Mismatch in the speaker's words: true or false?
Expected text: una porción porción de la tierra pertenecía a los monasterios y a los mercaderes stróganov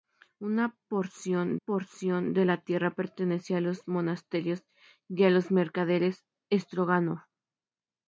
false